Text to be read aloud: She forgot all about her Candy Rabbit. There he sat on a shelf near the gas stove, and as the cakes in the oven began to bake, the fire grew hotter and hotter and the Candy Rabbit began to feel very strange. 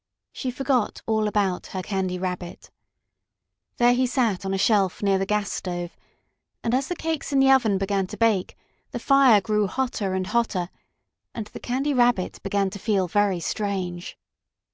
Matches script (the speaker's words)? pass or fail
pass